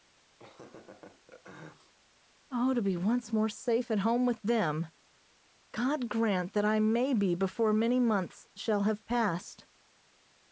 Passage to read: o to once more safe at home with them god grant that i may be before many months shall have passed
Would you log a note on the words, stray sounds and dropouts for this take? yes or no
yes